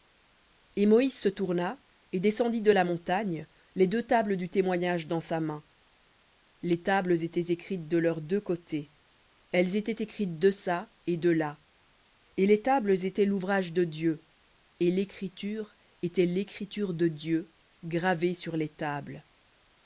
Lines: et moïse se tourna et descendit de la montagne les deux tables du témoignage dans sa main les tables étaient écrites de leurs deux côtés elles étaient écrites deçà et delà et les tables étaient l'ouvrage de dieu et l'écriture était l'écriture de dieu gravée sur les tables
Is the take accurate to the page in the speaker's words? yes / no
yes